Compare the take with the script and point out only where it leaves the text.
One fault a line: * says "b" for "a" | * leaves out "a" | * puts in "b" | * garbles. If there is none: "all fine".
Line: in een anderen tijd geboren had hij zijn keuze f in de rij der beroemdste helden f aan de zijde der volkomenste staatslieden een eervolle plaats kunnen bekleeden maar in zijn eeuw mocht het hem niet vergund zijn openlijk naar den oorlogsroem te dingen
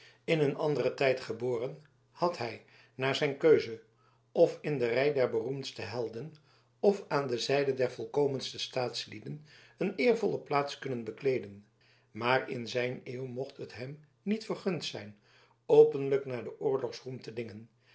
* puts in "naar"